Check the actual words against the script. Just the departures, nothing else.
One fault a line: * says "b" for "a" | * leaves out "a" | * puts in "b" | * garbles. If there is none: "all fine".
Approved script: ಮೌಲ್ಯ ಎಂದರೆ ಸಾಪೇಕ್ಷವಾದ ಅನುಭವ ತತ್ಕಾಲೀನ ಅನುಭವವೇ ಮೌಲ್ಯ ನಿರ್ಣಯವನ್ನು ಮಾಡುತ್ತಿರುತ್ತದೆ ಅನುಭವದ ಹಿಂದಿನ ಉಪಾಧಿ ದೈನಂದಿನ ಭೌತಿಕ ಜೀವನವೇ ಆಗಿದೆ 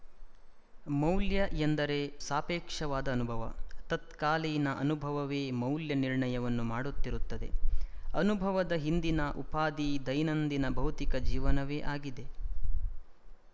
all fine